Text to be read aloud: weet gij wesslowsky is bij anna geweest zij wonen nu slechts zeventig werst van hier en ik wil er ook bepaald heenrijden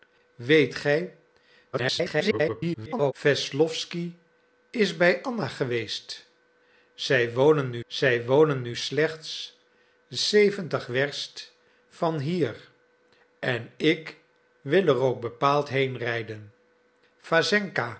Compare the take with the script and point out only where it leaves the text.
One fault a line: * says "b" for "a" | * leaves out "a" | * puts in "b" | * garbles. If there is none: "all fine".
* garbles
* puts in "zij wonen nu"